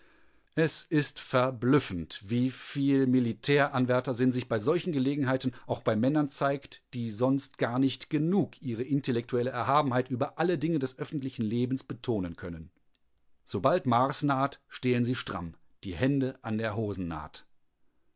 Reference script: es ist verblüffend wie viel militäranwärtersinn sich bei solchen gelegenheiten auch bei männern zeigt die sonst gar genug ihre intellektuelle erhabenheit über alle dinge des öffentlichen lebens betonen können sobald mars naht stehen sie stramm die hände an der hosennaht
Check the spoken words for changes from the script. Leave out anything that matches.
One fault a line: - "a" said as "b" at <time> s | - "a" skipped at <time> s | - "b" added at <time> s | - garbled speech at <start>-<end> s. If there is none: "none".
- "nicht" added at 7.8 s